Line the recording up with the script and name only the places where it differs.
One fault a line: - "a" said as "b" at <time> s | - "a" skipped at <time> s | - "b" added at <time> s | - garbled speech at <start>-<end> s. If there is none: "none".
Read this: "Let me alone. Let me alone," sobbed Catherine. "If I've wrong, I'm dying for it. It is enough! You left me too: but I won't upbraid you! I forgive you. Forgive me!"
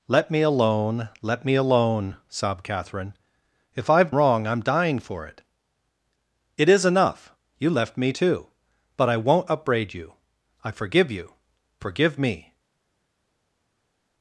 none